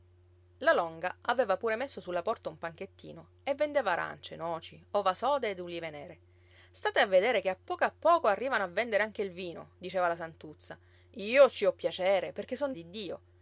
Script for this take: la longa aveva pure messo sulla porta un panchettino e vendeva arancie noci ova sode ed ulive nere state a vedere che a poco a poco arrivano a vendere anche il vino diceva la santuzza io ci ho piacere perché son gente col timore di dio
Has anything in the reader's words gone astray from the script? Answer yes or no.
yes